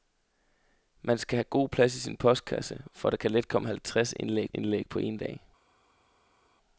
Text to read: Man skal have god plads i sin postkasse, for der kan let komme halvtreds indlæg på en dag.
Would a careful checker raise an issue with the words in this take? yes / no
yes